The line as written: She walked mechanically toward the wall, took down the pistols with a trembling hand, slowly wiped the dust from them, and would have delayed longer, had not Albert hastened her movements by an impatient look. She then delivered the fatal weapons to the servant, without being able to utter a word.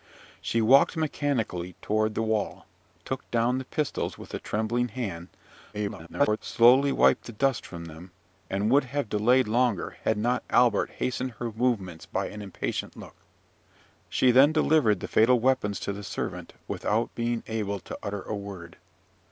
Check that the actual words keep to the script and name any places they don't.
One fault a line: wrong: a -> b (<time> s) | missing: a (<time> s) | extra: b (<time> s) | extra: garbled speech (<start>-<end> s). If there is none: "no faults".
extra: garbled speech (5.7-6.4 s)